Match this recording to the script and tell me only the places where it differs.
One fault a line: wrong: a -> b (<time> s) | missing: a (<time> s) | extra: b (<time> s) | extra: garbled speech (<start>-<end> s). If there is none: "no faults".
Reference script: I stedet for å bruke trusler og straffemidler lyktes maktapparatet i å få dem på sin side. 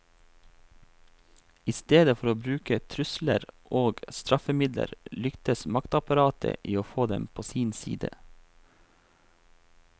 no faults